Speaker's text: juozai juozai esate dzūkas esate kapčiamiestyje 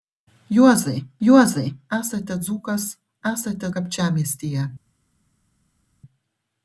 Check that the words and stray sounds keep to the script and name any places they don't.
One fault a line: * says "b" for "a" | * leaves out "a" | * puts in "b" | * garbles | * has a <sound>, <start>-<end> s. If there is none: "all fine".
all fine